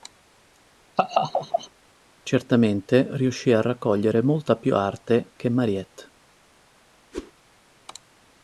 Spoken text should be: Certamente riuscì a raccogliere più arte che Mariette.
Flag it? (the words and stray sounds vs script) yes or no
yes